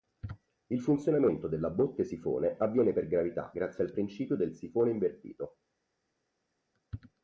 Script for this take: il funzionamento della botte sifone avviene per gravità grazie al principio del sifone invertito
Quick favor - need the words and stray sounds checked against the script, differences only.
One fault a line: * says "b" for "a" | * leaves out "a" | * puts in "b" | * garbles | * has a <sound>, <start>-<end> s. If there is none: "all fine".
all fine